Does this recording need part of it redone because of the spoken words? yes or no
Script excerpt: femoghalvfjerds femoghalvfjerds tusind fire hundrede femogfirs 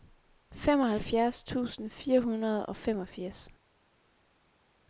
yes